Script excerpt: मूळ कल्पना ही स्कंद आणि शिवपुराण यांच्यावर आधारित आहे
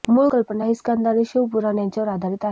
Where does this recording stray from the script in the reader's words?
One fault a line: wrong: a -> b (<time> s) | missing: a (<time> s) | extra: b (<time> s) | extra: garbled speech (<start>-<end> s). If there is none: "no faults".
no faults